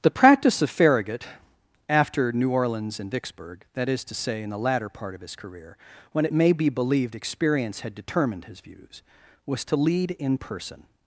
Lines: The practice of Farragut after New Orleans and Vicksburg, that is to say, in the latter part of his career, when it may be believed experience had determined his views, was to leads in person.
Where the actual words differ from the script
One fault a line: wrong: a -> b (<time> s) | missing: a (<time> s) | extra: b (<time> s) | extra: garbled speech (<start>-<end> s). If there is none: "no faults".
wrong: leads -> lead (9.8 s)